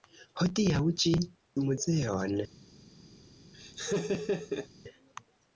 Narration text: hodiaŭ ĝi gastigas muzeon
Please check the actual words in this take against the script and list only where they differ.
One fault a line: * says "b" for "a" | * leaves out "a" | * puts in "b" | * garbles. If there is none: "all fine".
* leaves out "gastigas"